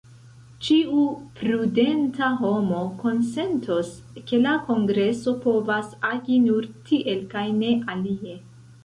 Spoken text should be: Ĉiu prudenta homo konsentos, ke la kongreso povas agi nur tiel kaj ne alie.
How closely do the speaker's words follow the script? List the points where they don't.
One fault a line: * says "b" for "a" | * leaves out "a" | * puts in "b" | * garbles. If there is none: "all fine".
all fine